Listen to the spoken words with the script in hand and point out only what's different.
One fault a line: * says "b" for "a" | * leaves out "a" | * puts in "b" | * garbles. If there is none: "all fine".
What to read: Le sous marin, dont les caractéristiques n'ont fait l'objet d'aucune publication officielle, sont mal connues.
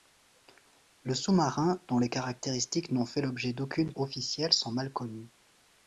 * leaves out "publication"